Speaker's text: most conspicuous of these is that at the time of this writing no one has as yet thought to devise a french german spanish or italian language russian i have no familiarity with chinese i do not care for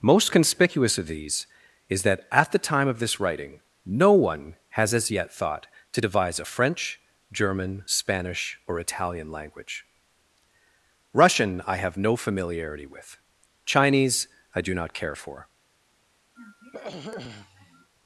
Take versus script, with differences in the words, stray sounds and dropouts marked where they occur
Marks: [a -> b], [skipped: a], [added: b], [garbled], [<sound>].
most conspicuous of these is that at the time of this writing no one has as yet thought to devise a french german spanish or italian language russian i have no familiarity with chinese i do not care for [throat clearing]